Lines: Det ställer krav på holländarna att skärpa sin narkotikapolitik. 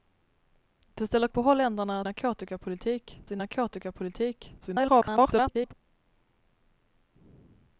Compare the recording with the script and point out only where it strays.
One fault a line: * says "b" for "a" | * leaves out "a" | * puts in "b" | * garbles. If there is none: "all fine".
* leaves out "krav"
* says "narkotikapolitik" for "skärpa"
* garbles